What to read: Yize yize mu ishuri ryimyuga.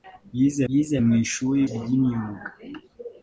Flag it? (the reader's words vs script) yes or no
no